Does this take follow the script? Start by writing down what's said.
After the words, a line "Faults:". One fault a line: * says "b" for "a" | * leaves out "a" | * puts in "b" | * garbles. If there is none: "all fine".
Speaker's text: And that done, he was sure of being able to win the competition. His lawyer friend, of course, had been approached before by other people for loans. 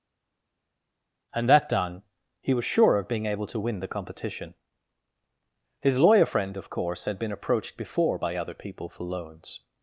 And that done, he was sure of being able to win the competition. His lawyer friend, of course, had been approached before by other people for loans.
Faults:
all fine